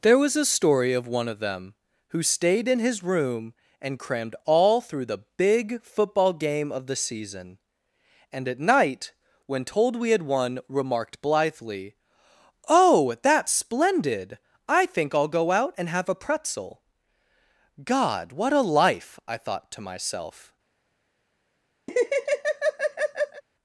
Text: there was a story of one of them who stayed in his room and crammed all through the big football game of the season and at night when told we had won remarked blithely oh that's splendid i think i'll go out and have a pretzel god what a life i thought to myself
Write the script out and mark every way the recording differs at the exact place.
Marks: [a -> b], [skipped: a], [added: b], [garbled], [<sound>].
there was a story of one of them who stayed in his room and crammed all through the big football game of the season and at night when told we had won remarked blithely oh that's splendid i think i'll go out and have a pretzel god what a life i thought to myself [laugh]